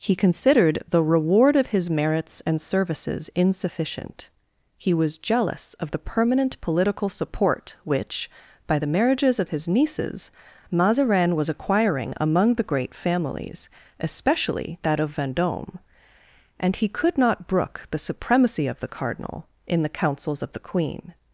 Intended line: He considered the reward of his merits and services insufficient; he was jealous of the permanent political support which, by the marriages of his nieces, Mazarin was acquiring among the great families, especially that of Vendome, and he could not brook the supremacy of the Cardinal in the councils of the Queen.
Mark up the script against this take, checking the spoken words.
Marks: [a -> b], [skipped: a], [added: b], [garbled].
He considered the reward of his merits and services insufficient; he was jealous of the permanent political support which, by the marriages of his nieces, Mazarin was acquiring among the great families, especially that of Vendome, and he could not brook the supremacy of the Cardinal in the councils of the Queen.